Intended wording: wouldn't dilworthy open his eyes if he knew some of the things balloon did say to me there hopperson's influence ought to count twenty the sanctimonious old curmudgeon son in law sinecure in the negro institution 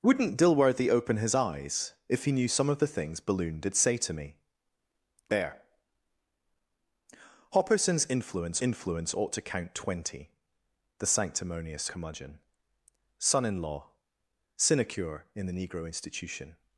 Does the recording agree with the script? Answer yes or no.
no